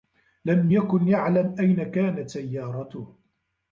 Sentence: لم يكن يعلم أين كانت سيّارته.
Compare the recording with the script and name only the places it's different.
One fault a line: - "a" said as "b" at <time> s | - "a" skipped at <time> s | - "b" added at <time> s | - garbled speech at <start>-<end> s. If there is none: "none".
none